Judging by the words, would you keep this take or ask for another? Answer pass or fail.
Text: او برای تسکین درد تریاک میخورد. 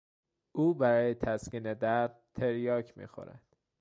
pass